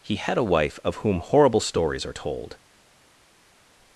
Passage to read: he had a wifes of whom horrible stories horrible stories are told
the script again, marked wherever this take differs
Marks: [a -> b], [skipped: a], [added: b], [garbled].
he had a [wifes -> wife] of whom horrible stories [skipped: horrible stories] are told